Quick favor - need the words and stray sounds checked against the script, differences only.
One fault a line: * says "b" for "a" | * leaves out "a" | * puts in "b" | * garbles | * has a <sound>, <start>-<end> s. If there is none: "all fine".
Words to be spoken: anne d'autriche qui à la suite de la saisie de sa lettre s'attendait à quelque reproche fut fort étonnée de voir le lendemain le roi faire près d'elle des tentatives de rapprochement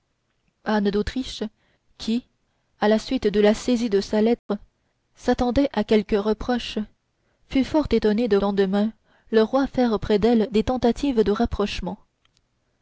* has a dropout, 4.4-4.5 s
* leaves out "voir le"